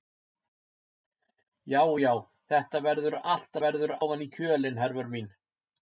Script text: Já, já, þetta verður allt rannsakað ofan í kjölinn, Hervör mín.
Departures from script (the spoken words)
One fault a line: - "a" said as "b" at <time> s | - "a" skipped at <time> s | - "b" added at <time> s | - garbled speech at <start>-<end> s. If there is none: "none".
- "rannsakað" said as "verður" at 3.6 s